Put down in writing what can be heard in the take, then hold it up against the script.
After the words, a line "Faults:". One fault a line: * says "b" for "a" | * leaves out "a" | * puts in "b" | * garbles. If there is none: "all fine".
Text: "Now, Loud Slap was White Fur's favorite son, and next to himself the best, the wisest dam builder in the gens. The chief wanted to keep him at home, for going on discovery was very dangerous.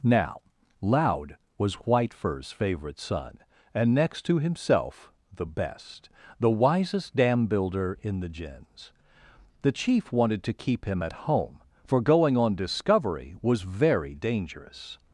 "Now, Loud was White Fur's favorite son, and next to himself the best, the wisest dam builder in the gens. The chief wanted to keep him at home, for going on discovery was very dangerous.
Faults:
* leaves out "Slap"